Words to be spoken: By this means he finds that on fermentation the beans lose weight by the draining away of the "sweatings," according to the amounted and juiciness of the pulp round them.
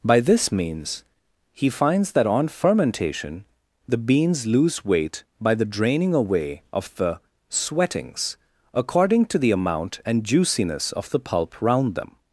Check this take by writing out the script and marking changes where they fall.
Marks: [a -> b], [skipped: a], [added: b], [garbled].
By this means he finds that on fermentation the beans lose weight by the draining away of the "sweatings," according to the [amounted -> amount] and juiciness of the pulp round them.